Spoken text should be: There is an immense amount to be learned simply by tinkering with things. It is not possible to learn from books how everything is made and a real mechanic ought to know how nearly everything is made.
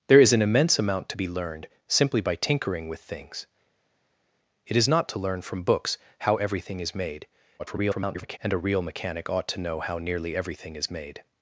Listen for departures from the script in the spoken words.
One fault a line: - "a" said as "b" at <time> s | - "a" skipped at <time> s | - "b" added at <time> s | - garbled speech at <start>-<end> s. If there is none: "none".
- "possible" skipped at 5.1 s
- garbled speech at 7.6-8.4 s